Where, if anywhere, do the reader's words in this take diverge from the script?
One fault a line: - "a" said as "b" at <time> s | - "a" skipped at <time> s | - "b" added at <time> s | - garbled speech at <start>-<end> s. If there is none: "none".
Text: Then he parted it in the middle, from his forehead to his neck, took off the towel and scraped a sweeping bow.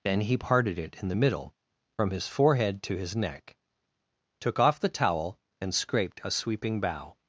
none